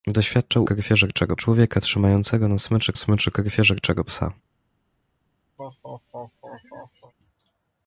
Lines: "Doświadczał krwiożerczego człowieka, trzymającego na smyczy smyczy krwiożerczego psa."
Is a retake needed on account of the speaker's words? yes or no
no